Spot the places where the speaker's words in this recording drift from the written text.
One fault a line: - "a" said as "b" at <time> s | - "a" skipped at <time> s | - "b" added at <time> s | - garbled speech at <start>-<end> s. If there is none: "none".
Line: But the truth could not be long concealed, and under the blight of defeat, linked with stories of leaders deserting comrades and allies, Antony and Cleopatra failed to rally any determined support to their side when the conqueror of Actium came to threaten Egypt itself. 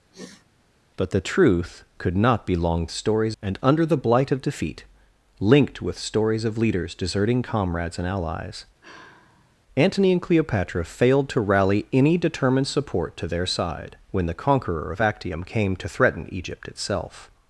- "concealed" said as "stories" at 2.9 s